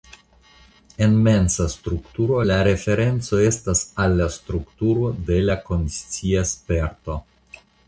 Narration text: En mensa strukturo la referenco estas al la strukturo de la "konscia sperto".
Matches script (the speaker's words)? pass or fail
pass